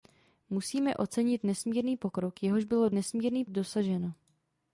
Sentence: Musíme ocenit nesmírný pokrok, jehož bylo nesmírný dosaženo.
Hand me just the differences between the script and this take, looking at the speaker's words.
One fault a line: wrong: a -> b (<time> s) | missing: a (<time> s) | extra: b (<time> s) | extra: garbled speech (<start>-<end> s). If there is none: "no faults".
no faults